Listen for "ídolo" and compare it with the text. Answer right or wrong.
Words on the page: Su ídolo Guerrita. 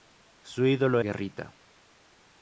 right